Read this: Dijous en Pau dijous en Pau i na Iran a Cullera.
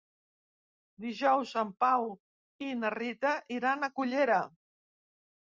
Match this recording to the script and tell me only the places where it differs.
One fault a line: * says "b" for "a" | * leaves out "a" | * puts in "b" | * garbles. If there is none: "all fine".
* leaves out "dijous en Pau"
* puts in "Rita"